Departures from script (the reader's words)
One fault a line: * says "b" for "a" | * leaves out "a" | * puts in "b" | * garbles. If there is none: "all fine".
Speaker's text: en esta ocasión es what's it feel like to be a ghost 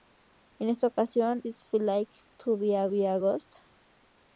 * leaves out "es what's"
* puts in "be a"